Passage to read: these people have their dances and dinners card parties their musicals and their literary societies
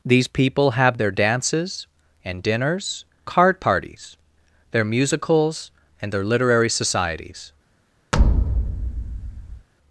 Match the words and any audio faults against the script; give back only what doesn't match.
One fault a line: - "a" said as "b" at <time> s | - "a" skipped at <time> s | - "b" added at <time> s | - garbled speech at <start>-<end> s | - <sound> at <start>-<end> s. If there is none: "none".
- thud at 8.1-9.7 s